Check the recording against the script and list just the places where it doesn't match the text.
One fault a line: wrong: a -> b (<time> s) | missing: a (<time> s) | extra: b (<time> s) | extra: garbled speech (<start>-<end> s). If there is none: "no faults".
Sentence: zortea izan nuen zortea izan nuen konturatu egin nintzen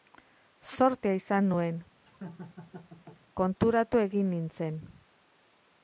missing: zortea izan nuen (1.8 s)